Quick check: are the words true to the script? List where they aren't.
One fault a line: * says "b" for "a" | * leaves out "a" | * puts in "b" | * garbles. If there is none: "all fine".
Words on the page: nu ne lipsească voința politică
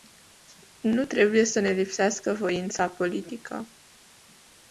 * puts in "trebuie să"